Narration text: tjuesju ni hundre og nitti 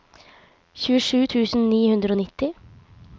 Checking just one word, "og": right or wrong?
right